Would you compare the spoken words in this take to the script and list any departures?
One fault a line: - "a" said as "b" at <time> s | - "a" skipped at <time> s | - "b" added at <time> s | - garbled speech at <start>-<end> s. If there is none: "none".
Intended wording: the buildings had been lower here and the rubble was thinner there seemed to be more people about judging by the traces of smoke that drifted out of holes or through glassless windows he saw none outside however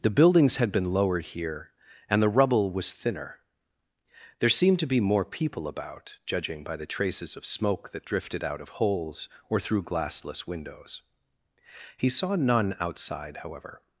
- "lower" said as "lowered" at 0.9 s